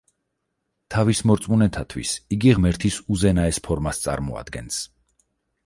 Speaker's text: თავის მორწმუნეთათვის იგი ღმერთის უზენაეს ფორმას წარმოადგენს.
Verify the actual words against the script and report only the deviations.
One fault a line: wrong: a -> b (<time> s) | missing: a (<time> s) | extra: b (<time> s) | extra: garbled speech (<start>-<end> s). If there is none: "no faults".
no faults